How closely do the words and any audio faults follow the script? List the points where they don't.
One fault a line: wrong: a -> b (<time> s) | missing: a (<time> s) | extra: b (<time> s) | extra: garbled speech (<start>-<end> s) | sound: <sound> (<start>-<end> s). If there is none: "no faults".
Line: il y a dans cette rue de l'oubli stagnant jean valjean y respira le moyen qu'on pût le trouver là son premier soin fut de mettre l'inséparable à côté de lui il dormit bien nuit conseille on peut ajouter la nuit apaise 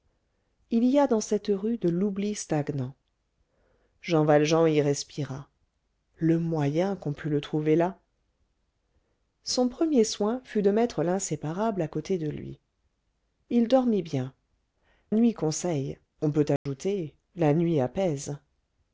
sound: dropout (16.6-16.7 s)